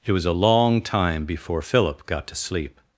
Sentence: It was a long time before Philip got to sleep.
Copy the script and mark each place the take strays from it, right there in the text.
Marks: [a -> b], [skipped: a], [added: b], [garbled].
It was a long time before Philip got to sleep.